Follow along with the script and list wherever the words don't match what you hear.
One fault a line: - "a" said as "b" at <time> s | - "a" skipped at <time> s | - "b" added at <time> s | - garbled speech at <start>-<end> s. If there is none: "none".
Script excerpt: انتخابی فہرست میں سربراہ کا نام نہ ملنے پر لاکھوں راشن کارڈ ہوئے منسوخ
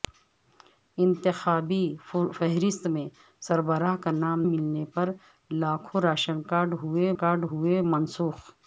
- "نہ" skipped at 4.4 s
- "کارڈ ہوئے" added at 7.1 s